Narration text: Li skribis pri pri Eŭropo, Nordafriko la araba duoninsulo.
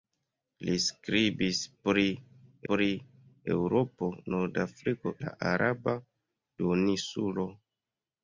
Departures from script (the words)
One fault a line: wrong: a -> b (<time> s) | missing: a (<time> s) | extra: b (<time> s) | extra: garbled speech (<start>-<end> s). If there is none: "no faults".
no faults